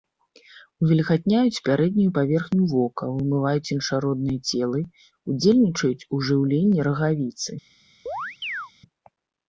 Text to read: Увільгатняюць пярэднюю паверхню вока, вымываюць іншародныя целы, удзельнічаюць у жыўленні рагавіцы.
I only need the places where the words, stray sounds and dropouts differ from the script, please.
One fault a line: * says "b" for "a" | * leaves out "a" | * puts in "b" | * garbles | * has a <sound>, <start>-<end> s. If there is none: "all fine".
* has a chirp, 8.1-8.7 s